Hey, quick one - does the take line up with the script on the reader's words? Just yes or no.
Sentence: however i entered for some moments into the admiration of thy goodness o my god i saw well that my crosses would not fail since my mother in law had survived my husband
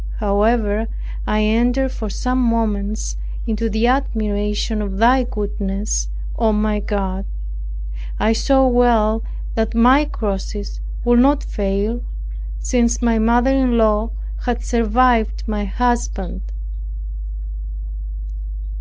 yes